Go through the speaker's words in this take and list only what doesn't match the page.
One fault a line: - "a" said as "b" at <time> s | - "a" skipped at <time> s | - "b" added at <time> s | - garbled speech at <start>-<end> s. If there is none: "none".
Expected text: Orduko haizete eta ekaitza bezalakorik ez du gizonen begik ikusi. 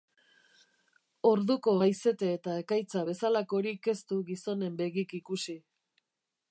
none